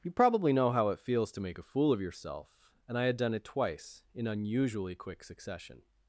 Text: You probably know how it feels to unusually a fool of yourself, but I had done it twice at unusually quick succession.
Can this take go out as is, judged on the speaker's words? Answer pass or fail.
fail